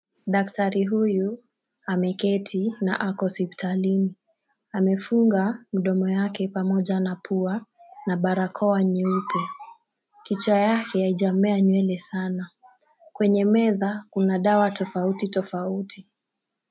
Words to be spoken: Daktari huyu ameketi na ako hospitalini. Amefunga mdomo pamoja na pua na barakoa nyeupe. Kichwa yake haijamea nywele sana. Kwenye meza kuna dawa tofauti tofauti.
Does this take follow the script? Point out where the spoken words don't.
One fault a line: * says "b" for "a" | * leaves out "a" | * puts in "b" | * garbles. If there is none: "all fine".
* puts in "yake"